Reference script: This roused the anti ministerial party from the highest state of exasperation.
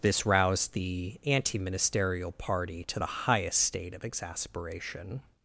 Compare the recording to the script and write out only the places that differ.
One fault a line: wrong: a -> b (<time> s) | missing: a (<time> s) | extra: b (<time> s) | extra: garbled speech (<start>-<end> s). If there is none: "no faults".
wrong: from -> to (2.9 s)